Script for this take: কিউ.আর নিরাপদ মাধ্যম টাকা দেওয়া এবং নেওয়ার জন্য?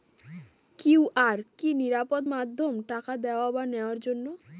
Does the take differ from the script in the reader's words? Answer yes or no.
yes